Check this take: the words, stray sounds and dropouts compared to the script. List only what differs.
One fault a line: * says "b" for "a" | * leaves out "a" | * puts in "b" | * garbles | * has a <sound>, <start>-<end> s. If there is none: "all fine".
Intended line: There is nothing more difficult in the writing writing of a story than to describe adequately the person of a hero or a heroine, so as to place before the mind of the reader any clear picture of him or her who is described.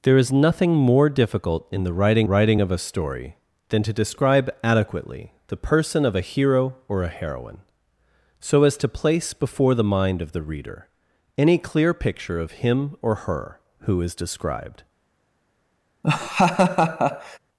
* has a laugh, 16.0-17.4 s